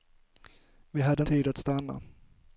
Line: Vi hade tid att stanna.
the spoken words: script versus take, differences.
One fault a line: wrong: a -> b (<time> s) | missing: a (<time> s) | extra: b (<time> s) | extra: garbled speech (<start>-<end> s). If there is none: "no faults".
no faults